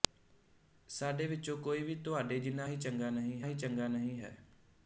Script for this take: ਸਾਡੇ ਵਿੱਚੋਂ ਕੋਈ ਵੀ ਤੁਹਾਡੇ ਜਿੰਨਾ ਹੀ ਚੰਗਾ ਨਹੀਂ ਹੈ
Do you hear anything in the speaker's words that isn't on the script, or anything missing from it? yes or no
yes